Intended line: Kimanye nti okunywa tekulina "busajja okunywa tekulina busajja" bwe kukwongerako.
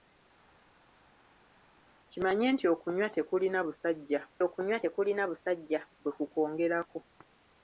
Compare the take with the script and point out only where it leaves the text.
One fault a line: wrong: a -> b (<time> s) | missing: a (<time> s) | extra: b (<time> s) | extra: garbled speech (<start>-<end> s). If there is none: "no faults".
no faults